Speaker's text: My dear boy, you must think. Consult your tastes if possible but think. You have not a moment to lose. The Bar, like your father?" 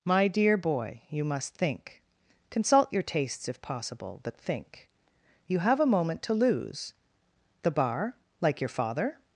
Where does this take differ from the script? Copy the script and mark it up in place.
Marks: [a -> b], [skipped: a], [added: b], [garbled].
My dear boy, you must think. Consult your tastes if possible but think. You have [skipped: not] a moment to lose. The Bar, like your father?"